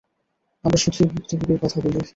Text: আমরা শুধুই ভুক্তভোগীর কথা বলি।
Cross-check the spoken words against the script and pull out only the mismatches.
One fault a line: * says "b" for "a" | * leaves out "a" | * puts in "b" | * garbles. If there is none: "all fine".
all fine